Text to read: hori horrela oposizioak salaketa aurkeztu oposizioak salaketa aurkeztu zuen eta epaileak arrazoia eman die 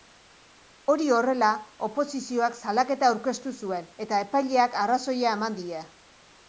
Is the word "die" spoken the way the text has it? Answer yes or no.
yes